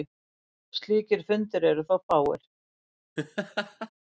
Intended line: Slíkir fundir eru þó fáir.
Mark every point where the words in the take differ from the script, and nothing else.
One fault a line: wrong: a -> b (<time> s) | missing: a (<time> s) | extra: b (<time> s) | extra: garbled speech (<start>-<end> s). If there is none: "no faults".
no faults